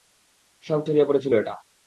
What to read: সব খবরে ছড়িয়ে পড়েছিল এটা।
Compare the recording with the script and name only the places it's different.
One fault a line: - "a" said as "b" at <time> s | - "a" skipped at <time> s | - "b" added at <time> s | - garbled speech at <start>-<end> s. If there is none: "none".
- "খবরে" skipped at 0.8 s